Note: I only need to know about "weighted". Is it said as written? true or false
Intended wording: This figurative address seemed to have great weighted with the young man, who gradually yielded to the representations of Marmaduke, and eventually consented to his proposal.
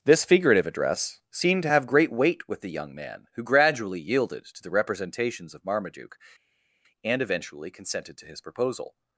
false